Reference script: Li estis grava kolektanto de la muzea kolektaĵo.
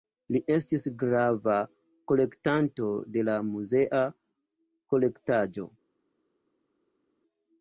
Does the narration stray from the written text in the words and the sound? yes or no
no